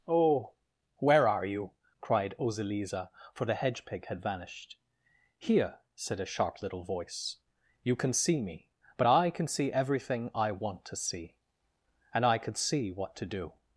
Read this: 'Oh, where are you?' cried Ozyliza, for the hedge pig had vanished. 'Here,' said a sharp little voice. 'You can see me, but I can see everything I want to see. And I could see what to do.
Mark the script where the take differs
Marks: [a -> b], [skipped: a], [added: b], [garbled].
'Oh, where are you?' cried Ozyliza, for the hedge pig had vanished. 'Here,' said a sharp little voice. 'You can see me, but I can see everything I want to see. And I could see what to do.